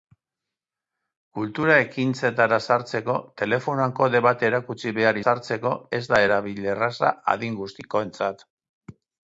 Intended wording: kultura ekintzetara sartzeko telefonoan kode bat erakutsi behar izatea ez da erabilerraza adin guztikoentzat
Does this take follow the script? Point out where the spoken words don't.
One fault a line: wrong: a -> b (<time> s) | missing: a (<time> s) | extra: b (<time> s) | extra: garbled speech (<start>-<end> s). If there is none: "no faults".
wrong: izatea -> sartzeko (5.2 s)